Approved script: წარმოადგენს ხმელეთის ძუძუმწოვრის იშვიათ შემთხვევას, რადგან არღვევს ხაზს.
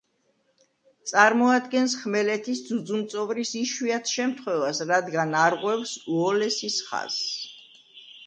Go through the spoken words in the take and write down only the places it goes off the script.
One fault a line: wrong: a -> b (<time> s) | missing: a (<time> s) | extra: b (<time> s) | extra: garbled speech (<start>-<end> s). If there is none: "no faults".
extra: უოლესის (6.2 s)